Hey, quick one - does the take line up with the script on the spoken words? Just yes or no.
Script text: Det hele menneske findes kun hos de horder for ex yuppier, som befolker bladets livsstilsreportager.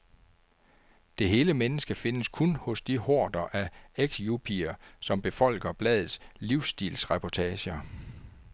no